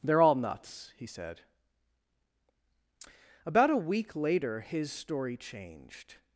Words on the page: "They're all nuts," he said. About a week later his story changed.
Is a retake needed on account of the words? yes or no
no